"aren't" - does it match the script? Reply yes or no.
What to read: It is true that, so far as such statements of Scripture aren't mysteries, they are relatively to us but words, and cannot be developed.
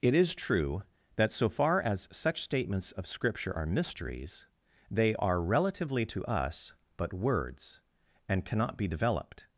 no